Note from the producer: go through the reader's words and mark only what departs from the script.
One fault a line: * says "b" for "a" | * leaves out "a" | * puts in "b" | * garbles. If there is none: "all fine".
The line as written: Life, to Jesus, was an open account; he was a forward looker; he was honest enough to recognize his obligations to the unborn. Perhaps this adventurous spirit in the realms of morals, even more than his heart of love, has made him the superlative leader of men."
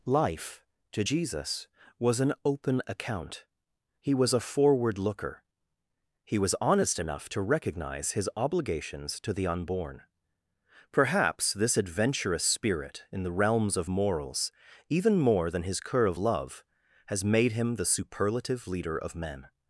* says "cur" for "heart"